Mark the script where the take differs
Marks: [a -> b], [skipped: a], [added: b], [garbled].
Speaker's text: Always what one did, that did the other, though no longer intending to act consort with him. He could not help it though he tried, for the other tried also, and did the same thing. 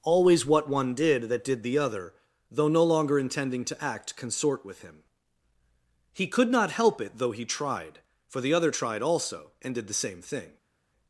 Always what one did, that did the other, though no longer intending to act consort with him. He could not help it though he tried, for the other tried also, and did the same thing.